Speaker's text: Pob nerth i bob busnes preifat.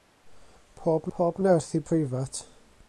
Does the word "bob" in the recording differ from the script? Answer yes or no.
yes